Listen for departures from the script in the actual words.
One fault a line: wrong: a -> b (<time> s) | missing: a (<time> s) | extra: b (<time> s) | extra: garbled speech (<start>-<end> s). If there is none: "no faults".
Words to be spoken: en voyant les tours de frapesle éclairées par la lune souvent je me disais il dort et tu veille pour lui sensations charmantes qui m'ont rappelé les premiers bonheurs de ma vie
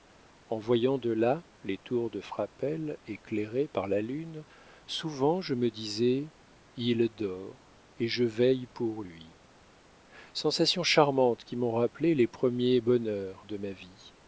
extra: de là (1.0 s)
wrong: tu -> je (8.1 s)